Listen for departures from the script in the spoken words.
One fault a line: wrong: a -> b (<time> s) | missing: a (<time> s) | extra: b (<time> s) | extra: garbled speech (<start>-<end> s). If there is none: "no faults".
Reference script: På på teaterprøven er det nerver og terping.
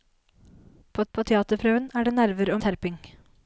no faults